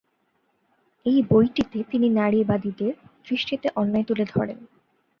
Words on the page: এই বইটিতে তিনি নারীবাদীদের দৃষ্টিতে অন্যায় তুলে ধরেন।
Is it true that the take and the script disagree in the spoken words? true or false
false